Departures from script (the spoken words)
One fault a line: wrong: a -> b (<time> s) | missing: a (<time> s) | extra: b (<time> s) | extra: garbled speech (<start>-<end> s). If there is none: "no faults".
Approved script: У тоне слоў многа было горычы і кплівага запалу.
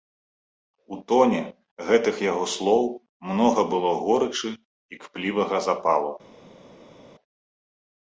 extra: гэтых яго (1.9 s)